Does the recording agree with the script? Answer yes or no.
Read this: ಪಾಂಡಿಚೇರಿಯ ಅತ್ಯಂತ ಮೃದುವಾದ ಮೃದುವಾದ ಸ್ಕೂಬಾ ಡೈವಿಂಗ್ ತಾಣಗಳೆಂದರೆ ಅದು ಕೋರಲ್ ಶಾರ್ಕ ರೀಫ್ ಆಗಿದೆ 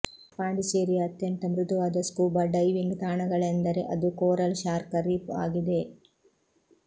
no